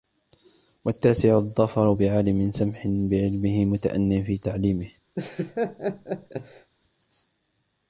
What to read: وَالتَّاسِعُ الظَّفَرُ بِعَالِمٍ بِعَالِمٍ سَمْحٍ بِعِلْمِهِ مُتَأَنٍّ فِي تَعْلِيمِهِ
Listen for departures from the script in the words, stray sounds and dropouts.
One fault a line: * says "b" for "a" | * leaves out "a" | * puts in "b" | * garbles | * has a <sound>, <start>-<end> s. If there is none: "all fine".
* leaves out "بِعَالِمٍ"
* has a laugh, 5.2-6.7 s